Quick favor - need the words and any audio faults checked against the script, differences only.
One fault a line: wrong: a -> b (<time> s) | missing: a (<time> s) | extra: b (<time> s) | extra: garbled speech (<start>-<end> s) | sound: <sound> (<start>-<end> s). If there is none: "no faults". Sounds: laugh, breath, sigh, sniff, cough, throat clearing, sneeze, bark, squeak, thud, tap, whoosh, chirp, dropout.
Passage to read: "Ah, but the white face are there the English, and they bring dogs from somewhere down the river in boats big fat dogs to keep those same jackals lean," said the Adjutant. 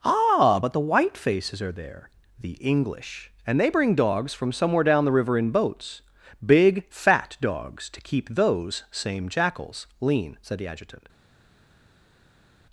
wrong: face -> faces (1.2 s)